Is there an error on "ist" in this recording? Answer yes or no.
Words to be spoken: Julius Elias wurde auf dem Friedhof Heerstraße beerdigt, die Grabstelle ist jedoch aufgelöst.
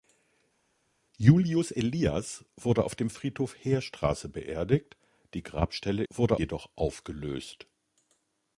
yes